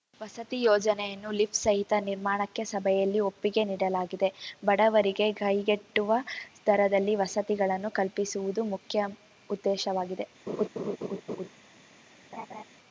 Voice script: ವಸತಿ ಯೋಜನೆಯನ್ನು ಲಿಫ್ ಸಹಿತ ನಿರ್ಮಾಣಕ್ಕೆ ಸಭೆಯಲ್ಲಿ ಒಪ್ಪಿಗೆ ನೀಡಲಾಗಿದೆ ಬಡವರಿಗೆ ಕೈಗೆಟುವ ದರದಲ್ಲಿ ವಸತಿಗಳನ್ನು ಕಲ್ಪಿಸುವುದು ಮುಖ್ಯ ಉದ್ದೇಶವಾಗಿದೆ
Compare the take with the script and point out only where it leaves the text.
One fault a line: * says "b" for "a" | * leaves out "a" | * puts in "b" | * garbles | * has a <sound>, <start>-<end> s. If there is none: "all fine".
* has a laugh, 10.5-11.5 s
* has a laugh, 12.3-12.6 s